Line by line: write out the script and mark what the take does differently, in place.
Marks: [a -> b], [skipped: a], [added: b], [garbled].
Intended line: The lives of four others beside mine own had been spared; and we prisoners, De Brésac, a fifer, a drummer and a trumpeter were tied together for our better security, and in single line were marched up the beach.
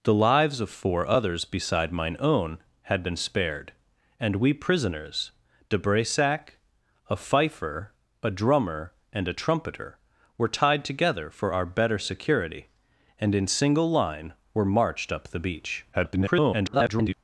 The lives of four others beside mine own had been spared; and we prisoners, De Brésac, a fifer, a drummer and a trumpeter were tied together for our better security, and in single line were marched up the beach. [garbled]